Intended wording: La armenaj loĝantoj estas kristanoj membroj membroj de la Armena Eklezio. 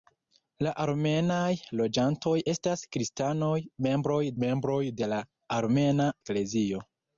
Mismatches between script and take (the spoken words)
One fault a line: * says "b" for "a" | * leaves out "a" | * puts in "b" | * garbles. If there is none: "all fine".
all fine